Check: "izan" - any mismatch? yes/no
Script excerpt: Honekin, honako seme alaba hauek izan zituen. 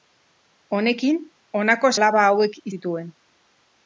yes